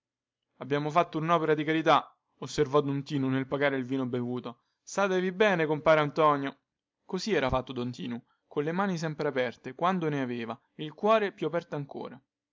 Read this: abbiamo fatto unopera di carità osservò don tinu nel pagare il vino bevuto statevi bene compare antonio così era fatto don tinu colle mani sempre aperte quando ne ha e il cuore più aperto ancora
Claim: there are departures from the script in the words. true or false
true